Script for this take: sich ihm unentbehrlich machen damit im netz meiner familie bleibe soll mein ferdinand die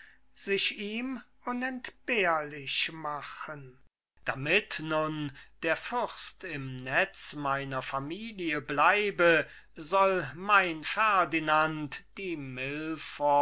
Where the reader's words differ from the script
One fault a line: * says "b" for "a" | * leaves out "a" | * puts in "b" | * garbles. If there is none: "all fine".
* puts in "nun der fürst"